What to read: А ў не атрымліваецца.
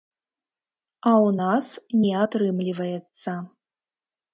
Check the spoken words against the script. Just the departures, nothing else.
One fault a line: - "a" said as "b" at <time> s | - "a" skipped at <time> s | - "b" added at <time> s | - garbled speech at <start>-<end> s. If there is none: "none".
- "нас" added at 1.4 s